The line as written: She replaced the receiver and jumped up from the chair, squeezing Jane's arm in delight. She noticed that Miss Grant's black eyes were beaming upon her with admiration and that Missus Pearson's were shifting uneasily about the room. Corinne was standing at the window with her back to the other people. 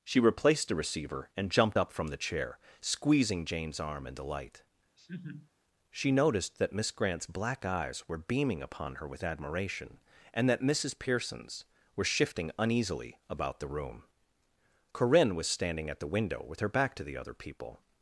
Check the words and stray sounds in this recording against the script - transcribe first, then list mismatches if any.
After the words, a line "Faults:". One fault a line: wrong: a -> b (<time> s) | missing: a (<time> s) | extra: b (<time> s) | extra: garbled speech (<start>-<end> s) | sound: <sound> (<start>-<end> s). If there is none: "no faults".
She replaced the receiver and jumped up from the chair, squeezing Jane's arm in delight. She noticed that Miss Grant's black eyes were beaming upon her with admiration and that Missus Pearson's were shifting uneasily about the room. Corinne was standing at the window with her back to the other people.
Faults:
sound: laugh (5.0-5.5 s)